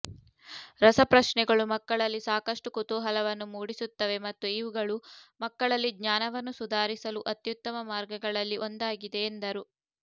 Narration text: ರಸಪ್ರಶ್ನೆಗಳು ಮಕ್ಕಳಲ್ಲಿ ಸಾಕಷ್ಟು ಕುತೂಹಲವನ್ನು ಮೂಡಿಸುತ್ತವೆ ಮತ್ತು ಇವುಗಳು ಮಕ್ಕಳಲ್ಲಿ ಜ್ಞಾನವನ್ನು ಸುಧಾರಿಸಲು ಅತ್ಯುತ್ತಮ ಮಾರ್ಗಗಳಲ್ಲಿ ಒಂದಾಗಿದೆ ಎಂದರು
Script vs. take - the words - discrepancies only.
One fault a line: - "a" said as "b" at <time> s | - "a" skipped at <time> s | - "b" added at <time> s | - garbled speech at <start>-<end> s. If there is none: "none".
none